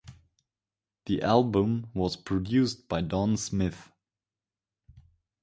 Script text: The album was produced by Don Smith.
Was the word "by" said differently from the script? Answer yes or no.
no